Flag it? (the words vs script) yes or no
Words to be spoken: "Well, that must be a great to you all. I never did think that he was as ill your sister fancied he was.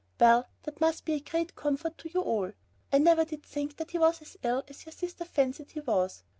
yes